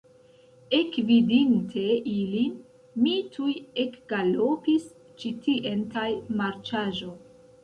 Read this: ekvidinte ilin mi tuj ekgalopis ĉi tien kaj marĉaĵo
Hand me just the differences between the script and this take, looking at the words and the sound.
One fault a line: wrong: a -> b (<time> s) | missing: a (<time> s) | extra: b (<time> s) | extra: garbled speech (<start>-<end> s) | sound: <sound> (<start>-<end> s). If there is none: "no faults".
no faults